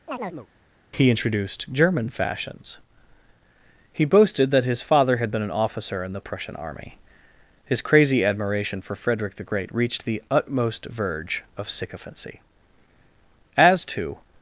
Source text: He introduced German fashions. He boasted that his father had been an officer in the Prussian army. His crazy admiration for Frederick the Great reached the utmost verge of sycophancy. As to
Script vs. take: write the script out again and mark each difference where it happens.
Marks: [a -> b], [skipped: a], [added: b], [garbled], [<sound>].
[chirp] He introduced German fashions. He boasted that his father had been an officer in the Prussian army. His crazy admiration for Frederick the Great reached the utmost verge of sycophancy. As to